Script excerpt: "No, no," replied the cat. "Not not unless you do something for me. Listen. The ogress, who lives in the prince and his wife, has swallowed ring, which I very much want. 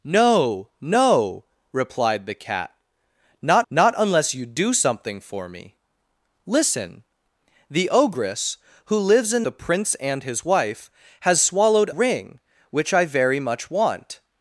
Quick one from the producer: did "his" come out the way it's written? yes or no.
yes